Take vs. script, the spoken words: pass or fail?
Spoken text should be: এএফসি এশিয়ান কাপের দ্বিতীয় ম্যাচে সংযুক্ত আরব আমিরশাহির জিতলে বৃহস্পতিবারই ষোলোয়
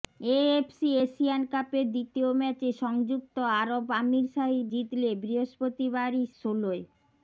pass